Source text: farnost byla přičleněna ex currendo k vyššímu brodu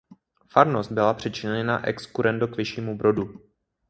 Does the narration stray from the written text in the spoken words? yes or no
no